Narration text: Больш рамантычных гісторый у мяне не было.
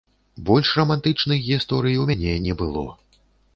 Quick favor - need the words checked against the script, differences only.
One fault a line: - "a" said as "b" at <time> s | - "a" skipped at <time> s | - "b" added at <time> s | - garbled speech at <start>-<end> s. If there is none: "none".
none